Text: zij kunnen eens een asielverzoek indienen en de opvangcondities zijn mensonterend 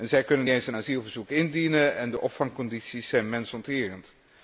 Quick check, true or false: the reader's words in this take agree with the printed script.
true